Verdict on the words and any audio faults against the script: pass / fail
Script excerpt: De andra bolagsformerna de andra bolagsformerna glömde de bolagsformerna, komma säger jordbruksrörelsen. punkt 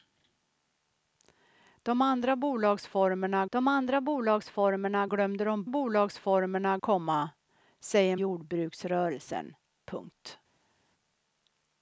pass